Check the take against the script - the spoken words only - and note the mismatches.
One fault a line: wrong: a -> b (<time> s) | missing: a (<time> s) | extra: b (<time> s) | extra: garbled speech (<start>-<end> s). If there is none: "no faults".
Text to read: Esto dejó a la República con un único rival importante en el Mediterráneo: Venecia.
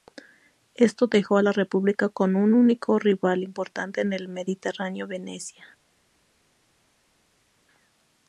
no faults